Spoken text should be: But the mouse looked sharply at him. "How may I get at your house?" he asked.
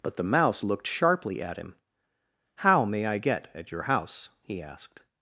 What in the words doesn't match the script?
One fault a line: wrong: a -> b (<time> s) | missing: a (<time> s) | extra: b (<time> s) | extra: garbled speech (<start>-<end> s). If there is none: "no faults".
no faults